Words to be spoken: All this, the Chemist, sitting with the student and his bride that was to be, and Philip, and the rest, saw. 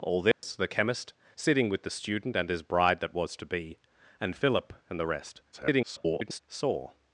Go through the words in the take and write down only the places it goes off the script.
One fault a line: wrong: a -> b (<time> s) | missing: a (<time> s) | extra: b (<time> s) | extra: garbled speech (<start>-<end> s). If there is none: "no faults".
extra: garbled speech (5.5-6.4 s)